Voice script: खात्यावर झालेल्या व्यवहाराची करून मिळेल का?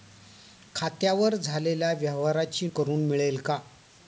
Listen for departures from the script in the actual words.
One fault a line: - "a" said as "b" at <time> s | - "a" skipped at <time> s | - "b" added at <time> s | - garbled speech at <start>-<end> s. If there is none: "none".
none